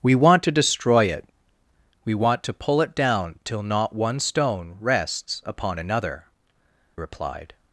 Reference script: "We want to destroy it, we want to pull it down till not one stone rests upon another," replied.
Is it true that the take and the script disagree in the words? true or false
false